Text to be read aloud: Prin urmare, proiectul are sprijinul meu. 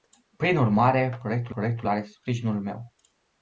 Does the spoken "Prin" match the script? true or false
true